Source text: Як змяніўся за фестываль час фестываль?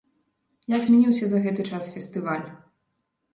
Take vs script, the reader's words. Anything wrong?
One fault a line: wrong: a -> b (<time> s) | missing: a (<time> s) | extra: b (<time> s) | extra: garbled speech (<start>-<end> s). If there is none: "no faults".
wrong: фестываль -> гэты (1.5 s)